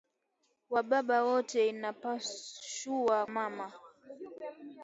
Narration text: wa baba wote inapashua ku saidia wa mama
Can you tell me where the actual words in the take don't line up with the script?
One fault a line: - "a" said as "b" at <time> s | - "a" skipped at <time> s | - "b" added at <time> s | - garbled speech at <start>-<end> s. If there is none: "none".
- "ku saidia wa" skipped at 3.2 s